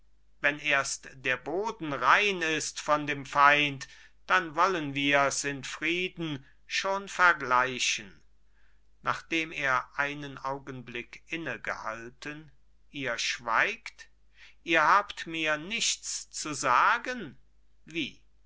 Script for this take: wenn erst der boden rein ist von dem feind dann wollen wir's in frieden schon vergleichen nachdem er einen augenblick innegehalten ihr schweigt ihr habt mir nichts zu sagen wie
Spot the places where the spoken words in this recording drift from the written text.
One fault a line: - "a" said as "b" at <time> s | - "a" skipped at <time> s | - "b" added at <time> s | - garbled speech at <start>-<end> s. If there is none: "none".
none